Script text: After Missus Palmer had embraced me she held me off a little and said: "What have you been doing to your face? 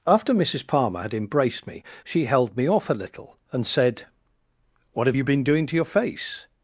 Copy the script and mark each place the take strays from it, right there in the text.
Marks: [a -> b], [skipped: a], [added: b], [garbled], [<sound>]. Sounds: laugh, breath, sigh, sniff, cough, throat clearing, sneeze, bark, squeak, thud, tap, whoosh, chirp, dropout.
After Missus Palmer had embraced me she held me off a little and said: "What have you been doing to your face?